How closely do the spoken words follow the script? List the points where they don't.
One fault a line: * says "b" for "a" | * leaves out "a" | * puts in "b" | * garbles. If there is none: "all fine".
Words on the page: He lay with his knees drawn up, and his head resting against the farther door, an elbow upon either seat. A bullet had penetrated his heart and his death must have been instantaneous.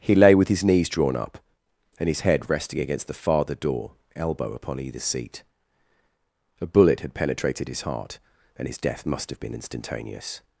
* leaves out "an"